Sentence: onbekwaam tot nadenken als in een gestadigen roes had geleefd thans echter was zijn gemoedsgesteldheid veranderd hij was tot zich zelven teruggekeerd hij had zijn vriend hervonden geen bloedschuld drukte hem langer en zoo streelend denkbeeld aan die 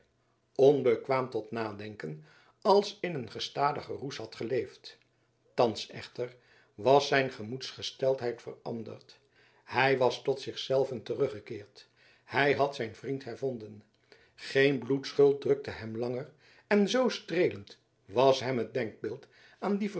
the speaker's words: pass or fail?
fail